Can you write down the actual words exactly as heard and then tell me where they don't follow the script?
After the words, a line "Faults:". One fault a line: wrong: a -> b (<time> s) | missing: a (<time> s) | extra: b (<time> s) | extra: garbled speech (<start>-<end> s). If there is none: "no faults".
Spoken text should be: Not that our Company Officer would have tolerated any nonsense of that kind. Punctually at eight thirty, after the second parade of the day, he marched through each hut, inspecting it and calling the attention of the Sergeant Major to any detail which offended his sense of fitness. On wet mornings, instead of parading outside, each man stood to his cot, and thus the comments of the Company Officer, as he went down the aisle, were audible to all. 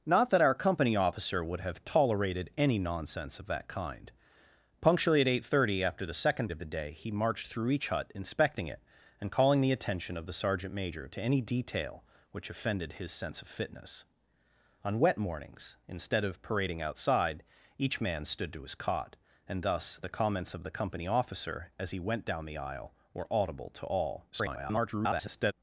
Not that our Company Officer would have tolerated any nonsense of that kind. Punctually at eight thirty, after the second of the day, he marched through each hut, inspecting it and calling the attention of the Sergeant Major to any detail which offended his sense of fitness. On wet mornings, instead of parading outside, each man stood to his cot, and thus the comments of the Company Officer, as he went down the aisle, were audible to all. [garbled]
Faults:
missing: parade (6.5 s)
extra: garbled speech (24.3-25.5 s)